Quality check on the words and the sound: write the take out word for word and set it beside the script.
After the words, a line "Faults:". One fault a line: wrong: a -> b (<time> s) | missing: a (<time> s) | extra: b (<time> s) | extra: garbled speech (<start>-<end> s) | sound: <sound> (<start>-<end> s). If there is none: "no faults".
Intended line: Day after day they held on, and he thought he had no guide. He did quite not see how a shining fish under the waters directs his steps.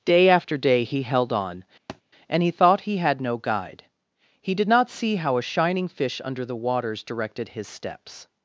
Day after day he held on, and he thought he had no guide. He did not see how a shining fish under the waters directed his steps.
Faults:
wrong: they -> he (0.8 s)
sound: thud (1.9-2.0 s)
missing: quite (4.7 s)
wrong: directs -> directed (7.0 s)